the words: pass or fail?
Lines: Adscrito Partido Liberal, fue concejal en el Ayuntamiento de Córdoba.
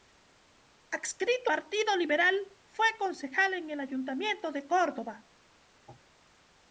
pass